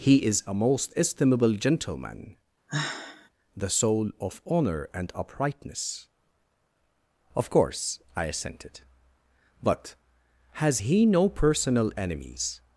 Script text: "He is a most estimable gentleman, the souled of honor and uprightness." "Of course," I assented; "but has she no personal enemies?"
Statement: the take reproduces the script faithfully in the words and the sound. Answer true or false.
false